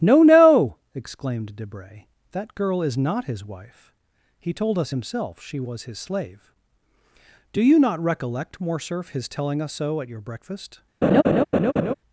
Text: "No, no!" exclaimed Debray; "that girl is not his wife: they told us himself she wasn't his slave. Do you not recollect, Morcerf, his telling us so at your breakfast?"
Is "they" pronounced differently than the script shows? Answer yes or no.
yes